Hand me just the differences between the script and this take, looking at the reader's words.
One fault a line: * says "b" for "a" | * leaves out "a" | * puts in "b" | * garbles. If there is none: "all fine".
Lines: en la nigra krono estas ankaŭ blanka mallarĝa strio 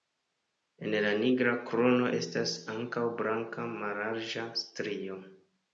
all fine